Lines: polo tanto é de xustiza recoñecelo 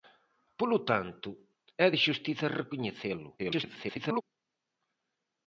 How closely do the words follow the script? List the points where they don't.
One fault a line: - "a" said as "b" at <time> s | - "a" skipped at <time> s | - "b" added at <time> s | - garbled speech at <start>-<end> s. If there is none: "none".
- garbled speech at 3.4-4.2 s